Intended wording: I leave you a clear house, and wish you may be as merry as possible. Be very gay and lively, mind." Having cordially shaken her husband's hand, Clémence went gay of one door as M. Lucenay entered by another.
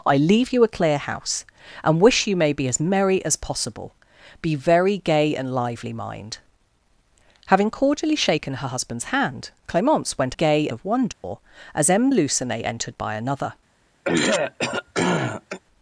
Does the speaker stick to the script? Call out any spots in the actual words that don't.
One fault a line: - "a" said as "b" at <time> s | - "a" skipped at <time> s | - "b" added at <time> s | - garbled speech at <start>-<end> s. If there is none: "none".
none